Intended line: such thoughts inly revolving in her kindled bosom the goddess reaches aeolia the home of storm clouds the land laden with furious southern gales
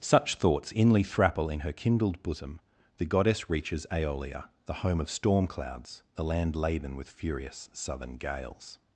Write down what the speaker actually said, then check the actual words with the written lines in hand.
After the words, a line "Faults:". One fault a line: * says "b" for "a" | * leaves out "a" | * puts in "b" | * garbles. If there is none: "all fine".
such thoughts inly thrapple in her kindled bosom the goddess reaches aeolia the home of storm clouds the land laden with furious southern gales
Faults:
* says "thrapple" for "revolving"